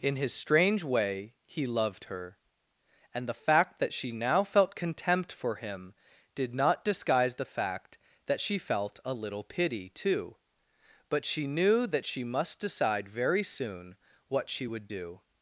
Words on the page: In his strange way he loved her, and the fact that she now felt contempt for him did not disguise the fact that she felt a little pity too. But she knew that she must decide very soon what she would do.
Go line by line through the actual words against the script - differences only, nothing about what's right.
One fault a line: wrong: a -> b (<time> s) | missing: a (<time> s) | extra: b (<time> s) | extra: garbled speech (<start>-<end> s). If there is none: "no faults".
no faults